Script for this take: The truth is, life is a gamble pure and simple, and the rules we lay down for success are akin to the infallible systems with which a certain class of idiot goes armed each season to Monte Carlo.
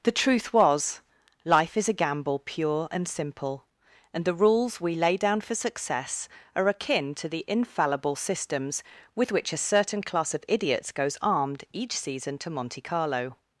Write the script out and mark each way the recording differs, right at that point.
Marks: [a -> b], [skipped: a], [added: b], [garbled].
The truth [is, -> was] life is a gamble pure and simple, and the rules we lay down for success are akin to the infallible systems with which a certain class of [idiot -> idiots] goes armed each season to Monte Carlo.